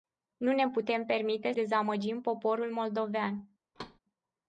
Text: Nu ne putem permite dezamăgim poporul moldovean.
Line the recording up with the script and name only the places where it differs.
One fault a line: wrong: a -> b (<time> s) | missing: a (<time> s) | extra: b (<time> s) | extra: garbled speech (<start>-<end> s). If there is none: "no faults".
no faults